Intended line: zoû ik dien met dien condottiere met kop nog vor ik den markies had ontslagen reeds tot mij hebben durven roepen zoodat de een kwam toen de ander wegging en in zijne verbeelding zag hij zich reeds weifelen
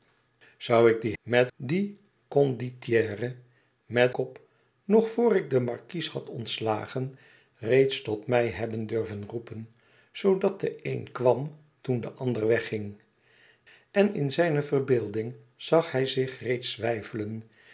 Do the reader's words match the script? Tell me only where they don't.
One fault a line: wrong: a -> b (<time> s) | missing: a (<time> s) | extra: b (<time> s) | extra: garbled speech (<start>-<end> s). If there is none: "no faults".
no faults